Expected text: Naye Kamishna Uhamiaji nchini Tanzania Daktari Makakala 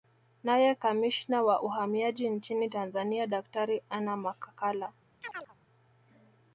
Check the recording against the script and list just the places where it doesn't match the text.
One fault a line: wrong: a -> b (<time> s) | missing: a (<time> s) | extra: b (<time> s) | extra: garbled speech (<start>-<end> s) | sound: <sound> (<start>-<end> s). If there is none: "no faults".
extra: wa (1.4 s)
extra: Anna (3.9 s)
sound: chirp (5.2-5.6 s)